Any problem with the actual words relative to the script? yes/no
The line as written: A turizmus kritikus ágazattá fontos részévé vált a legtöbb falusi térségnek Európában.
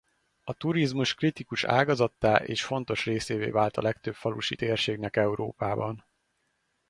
yes